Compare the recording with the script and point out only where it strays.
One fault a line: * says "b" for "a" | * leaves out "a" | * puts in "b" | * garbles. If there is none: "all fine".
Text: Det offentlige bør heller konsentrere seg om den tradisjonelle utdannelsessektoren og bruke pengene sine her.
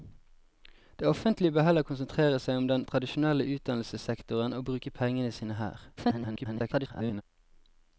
* garbles